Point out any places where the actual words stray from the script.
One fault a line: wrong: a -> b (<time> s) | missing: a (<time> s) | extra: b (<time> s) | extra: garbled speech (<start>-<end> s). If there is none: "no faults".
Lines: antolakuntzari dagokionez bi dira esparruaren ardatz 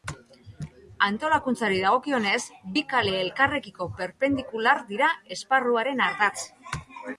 extra: kale elkarrekiko perpendikular (3.0 s)